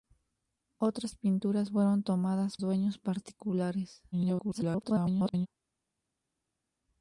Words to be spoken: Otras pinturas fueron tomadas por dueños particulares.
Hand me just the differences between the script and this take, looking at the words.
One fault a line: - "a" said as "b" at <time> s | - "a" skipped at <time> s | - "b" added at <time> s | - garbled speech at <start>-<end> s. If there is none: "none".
- "por" skipped at 2.6 s
- garbled speech at 4.1-5.5 s